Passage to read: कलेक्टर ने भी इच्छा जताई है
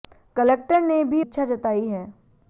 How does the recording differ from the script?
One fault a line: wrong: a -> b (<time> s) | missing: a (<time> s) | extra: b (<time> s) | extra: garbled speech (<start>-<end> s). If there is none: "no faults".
no faults